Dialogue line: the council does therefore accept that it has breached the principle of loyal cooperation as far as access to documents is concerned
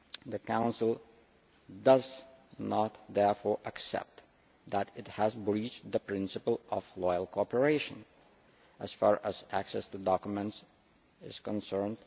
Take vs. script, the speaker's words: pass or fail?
fail